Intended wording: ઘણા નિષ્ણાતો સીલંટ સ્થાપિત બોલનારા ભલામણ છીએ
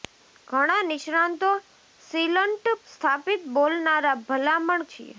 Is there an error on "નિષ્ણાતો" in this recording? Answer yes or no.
no